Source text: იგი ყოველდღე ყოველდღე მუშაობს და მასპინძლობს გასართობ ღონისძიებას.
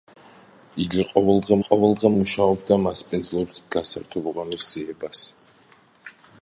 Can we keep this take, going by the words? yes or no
yes